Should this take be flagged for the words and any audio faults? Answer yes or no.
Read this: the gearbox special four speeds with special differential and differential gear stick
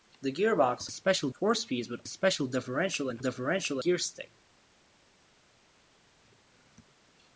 no